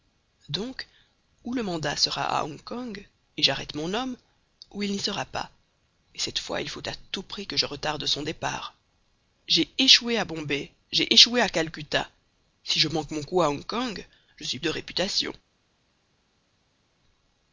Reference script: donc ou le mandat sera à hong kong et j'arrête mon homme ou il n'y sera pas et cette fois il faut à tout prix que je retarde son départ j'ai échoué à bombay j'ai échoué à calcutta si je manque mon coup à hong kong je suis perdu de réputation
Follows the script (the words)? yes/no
no